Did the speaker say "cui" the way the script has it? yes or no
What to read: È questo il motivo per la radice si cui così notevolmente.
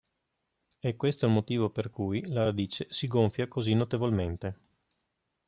no